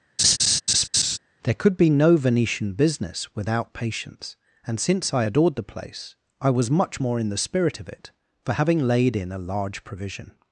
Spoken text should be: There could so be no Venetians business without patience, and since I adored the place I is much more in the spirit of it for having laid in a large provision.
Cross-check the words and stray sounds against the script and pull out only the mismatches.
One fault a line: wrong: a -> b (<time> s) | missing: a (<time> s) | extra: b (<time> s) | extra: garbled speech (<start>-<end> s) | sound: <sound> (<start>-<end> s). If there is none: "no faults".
sound: laugh (0.2-1.2 s)
missing: so (1.7 s)
wrong: Venetians -> Venetian (2.2 s)
wrong: is -> was (6.5 s)